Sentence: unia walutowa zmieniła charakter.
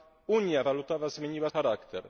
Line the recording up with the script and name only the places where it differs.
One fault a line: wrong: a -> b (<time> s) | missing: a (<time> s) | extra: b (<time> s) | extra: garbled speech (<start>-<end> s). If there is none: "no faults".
no faults